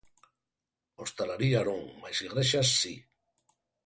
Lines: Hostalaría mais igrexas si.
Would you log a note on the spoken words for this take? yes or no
yes